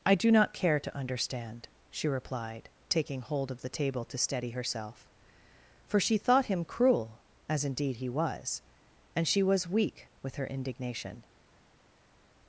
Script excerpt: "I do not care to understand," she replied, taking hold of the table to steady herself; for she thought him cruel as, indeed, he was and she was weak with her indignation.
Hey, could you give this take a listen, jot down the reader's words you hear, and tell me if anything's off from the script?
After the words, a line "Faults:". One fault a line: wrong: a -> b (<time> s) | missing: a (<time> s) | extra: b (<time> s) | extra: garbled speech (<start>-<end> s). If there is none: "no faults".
"I do not care to understand," she replied, taking hold of the table to steady herself; for she thought him cruel as, indeed, he was and she was weak with her indignation.
Faults:
no faults